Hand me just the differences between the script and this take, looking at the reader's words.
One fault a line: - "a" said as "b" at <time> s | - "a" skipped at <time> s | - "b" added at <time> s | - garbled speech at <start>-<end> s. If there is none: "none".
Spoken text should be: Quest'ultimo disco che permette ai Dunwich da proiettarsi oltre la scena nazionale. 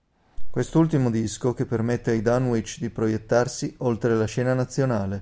- "da" said as "di" at 2.8 s